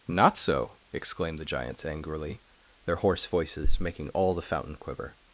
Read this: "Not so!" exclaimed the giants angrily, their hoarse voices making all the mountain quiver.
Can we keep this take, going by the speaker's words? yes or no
no